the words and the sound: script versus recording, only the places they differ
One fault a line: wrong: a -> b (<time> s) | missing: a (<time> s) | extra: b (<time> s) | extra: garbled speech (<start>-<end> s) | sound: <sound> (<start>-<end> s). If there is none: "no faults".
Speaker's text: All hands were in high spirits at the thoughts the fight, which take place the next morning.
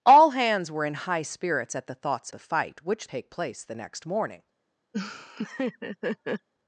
sound: laugh (4.9-6.5 s)